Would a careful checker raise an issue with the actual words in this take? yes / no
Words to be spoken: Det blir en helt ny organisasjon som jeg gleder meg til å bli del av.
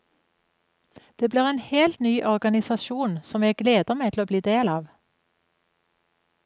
no